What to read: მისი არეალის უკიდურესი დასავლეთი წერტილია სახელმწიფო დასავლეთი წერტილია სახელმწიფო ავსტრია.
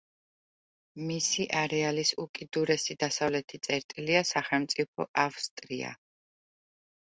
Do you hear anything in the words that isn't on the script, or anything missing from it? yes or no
yes